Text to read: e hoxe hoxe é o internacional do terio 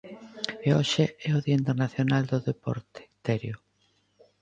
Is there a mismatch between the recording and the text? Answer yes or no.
yes